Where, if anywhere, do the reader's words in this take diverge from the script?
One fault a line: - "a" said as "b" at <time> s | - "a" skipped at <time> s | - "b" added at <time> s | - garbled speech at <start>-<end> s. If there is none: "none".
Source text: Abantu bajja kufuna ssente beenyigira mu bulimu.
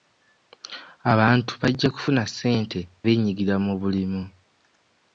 none